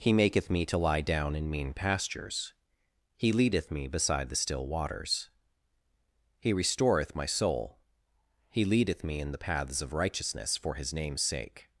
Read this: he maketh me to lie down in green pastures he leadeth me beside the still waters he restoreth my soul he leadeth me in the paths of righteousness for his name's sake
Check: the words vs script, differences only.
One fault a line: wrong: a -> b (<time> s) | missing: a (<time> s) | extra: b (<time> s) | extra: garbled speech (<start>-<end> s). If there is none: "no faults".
wrong: green -> mean (1.5 s)